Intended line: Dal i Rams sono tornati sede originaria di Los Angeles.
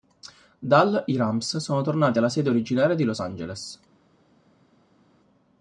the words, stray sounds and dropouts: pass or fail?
fail